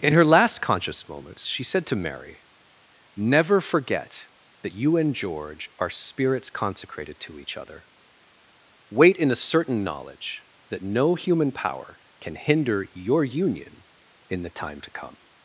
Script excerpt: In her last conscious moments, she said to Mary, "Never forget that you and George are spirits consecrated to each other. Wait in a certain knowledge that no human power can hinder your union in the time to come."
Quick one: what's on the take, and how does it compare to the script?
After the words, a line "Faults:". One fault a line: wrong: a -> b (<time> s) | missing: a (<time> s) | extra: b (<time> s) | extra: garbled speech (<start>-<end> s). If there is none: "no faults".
In her last conscious moments, she said to Mary, "Never forget that you and George are spirits consecrated to each other. Wait in a certain knowledge that no human power can hinder your union in the time to come."
Faults:
no faults